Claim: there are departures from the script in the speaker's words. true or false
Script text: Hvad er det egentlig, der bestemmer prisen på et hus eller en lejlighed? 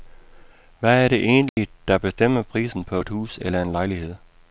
false